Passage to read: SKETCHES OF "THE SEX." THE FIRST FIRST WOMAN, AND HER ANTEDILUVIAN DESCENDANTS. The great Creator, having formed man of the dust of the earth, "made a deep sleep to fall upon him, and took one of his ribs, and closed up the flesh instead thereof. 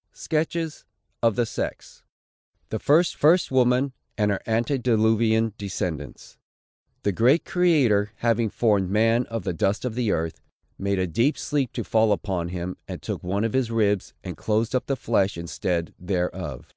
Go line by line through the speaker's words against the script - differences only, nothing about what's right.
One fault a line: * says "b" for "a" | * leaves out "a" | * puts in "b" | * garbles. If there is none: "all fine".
all fine